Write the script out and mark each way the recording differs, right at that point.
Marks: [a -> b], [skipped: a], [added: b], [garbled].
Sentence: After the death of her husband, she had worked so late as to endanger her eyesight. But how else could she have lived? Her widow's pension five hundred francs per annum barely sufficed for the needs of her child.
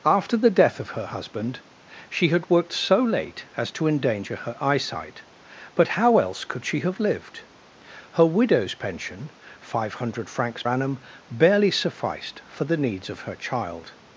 After the death of her husband, she had worked so late as to endanger her eyesight. But how else could she have lived? Her widow's pension five hundred francs [skipped: per] annum barely sufficed for the needs of her child.